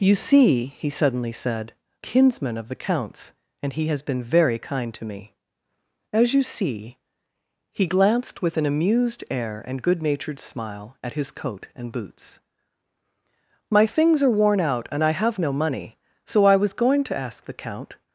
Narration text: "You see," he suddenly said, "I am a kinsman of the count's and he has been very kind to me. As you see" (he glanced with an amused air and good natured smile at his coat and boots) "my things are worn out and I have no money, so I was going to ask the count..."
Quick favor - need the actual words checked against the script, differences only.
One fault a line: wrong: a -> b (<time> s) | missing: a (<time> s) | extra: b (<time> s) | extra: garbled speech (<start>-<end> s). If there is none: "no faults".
missing: I am a (1.7 s)